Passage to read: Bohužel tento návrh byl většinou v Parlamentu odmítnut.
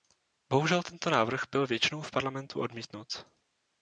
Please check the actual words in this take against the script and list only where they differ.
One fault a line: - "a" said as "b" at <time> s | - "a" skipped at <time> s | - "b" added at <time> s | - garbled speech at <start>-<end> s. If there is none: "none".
none